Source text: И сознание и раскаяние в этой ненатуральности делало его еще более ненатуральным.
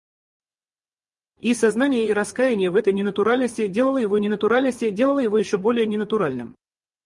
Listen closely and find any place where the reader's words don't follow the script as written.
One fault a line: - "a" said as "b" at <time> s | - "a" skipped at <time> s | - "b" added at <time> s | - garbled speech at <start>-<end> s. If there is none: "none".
- "ненатуральности делало его" added at 4.2 s